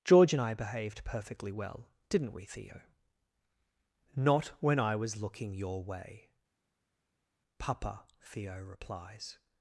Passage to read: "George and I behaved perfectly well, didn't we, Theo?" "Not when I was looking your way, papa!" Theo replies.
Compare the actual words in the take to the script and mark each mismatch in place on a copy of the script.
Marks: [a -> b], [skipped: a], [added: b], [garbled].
"George and I behaved perfectly well, didn't we, Theo?" "Not when I was looking your way, papa!" Theo replies.